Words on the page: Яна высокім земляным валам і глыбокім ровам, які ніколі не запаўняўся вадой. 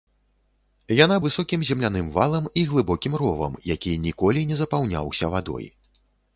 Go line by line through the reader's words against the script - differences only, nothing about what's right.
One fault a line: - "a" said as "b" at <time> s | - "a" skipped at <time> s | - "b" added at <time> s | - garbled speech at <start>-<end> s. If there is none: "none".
none